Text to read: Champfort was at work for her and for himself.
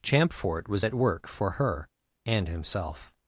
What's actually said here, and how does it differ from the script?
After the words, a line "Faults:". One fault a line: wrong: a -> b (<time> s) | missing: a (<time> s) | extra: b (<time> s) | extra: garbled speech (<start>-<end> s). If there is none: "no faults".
Champfort was at work for her and himself.
Faults:
missing: for (2.5 s)